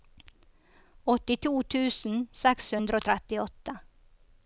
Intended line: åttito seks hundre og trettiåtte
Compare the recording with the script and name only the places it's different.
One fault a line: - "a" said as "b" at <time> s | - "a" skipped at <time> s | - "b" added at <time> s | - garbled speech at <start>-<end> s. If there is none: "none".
- "tusen" added at 1.8 s